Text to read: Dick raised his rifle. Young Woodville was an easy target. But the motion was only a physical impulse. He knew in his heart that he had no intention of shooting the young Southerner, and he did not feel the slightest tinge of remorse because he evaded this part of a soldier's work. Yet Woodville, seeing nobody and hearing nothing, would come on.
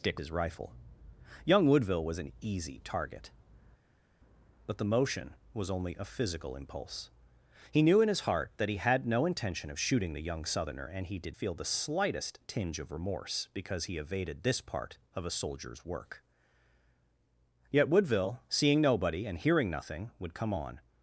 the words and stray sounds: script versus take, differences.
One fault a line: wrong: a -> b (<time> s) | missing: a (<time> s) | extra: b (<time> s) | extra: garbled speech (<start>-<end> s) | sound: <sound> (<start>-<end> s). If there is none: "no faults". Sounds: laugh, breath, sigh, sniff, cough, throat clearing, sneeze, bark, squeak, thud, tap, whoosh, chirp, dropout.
missing: raised (0.2 s)
missing: not (11.4 s)